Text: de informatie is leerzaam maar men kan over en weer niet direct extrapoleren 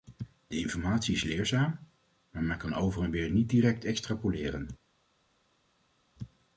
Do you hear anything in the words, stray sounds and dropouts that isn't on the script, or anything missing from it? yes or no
no